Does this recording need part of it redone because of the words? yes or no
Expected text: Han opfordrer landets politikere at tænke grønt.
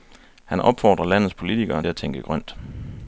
no